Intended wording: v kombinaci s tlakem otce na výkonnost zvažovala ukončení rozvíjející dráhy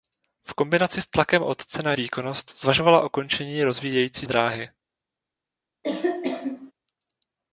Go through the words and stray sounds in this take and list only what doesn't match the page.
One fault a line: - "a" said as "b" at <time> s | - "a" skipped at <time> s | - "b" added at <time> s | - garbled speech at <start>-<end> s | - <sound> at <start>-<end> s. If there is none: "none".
- cough at 5.8-6.7 s